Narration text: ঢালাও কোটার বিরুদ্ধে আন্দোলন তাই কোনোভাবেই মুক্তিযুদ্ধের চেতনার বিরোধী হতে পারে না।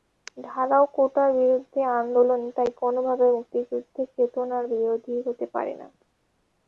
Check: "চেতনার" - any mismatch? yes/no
no